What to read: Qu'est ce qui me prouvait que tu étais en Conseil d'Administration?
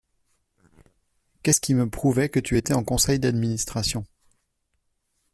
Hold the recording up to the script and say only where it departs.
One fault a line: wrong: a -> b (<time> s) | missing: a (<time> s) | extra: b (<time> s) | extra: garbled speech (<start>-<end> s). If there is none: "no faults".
no faults